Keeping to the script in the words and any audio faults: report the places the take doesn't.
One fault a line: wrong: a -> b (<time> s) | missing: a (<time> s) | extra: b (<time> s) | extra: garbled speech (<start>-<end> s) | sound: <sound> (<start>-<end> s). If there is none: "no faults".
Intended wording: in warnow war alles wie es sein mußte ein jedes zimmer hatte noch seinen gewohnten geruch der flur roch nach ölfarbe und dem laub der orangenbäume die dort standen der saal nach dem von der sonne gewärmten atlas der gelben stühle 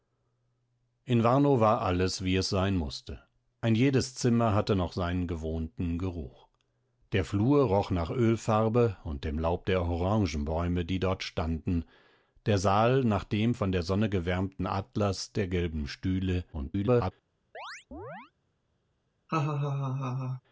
extra: garbled speech (16.5-17.1 s)
sound: chirp (17.5-18.3 s)
sound: laugh (19.3-20.4 s)